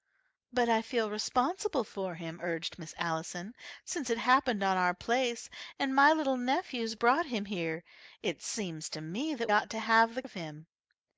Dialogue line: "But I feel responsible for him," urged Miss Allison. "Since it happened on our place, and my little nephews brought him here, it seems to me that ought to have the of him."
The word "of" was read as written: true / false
true